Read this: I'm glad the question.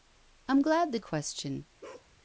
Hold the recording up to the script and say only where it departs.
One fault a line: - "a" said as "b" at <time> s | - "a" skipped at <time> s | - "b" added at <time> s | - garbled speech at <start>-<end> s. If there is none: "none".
none